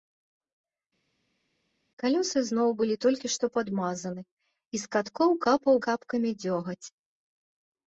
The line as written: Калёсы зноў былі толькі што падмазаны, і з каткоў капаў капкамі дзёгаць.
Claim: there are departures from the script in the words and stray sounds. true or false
false